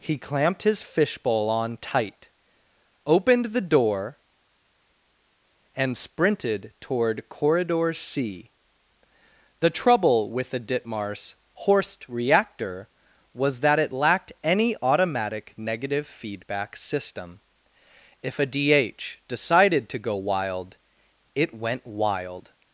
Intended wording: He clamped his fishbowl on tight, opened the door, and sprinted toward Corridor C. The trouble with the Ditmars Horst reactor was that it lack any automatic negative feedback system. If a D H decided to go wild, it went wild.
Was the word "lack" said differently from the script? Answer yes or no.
yes